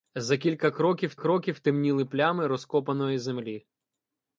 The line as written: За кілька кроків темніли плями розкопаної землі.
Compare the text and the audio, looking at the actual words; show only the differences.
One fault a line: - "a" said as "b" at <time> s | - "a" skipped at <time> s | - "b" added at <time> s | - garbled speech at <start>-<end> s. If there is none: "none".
- "кроків" added at 1.2 s